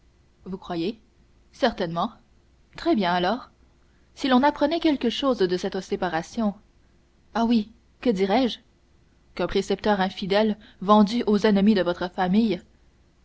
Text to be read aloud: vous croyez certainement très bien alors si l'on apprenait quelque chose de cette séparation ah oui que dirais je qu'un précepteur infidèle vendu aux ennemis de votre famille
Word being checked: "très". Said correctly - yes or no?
yes